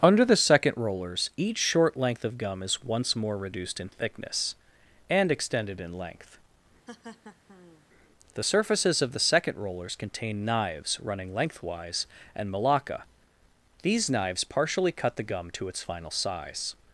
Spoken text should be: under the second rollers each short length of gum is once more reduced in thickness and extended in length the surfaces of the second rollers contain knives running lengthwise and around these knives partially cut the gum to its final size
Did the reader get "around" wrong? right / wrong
wrong